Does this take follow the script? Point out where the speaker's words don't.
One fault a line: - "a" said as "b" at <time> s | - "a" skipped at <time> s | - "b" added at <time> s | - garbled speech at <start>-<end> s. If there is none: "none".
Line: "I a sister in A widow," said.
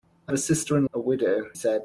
none